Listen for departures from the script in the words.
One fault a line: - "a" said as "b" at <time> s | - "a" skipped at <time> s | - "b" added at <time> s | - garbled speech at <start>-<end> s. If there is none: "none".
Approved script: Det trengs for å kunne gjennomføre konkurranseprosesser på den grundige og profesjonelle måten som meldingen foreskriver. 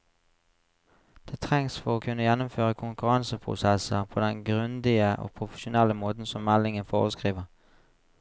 none